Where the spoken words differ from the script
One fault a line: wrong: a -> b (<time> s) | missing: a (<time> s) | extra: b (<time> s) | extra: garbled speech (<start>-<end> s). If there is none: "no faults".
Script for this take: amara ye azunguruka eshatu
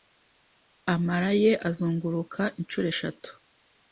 extra: inshuro (2.6 s)